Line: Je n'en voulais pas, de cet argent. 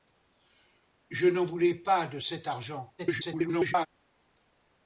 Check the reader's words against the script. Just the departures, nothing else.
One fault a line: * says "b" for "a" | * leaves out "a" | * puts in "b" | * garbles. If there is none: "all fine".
* garbles